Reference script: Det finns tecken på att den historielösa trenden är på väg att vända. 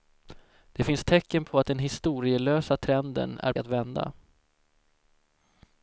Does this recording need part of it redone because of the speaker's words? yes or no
yes